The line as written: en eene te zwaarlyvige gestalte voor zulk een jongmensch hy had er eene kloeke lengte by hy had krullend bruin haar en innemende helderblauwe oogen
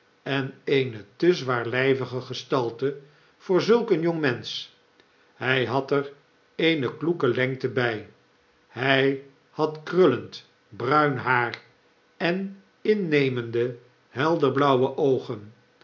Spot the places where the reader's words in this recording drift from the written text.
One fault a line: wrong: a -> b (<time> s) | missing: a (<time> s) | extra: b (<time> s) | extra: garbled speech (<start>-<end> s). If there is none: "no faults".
no faults